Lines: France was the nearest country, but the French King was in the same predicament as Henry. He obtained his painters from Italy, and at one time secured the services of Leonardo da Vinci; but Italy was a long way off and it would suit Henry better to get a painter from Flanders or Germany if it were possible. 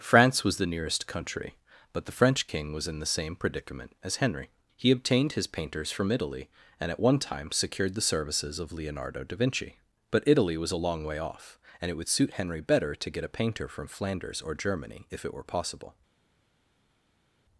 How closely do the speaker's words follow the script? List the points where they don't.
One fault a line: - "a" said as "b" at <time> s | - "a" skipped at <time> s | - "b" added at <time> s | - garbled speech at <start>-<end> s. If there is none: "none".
none